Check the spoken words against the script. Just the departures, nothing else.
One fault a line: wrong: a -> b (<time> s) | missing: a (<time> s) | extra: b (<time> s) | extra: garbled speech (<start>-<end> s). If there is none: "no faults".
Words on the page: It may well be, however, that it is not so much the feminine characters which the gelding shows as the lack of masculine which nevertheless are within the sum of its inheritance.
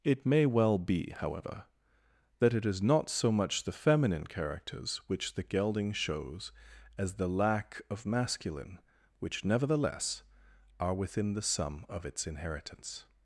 no faults